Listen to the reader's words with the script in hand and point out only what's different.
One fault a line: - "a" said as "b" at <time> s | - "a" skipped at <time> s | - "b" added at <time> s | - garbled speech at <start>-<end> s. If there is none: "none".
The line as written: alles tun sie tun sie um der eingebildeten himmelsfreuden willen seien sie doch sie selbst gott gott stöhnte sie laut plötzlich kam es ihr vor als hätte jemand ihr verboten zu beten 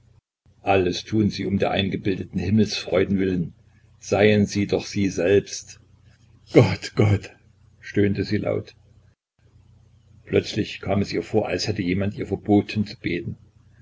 - "tun sie" skipped at 1.4 s